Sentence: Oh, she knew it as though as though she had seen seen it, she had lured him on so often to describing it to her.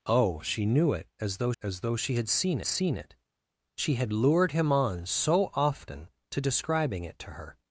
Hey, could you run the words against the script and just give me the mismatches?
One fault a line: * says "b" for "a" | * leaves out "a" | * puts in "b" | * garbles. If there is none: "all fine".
all fine